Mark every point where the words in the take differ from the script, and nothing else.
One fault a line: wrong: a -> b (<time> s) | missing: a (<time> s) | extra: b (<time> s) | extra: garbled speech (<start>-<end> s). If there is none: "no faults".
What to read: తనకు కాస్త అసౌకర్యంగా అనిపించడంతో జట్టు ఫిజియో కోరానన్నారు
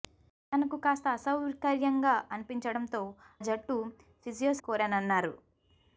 no faults